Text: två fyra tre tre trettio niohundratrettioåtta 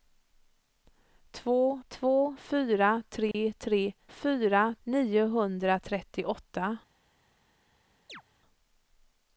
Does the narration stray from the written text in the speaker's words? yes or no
yes